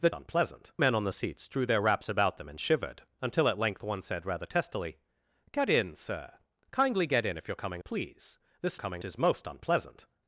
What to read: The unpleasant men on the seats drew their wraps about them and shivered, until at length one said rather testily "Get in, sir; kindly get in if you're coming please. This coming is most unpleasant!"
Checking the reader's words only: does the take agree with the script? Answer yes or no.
yes